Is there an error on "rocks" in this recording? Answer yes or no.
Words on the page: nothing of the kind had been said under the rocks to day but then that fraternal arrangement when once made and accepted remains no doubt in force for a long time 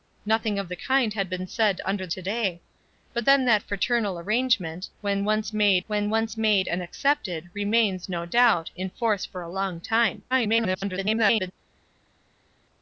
yes